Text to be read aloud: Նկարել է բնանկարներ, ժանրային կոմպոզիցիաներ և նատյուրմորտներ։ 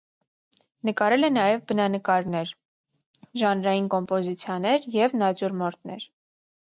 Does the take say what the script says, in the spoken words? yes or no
no